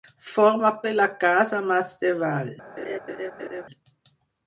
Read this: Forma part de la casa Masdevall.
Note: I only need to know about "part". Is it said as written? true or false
false